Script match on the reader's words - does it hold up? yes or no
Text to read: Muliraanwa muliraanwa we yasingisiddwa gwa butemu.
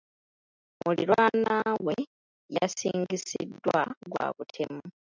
no